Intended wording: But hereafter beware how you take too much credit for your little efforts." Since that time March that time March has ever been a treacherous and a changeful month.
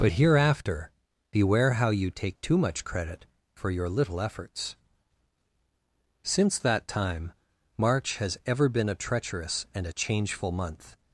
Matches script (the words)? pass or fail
fail